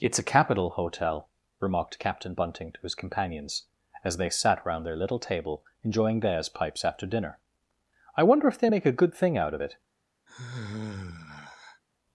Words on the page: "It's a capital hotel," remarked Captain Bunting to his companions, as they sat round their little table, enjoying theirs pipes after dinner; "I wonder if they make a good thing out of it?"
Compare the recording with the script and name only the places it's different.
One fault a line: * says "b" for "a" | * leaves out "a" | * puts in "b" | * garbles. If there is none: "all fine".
all fine